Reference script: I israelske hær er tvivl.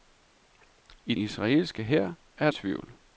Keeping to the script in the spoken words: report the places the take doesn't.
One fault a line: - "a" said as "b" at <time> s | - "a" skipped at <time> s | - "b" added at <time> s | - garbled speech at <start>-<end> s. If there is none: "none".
none